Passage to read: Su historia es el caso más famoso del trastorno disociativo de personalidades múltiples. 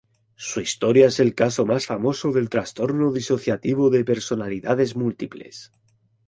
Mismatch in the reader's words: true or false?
false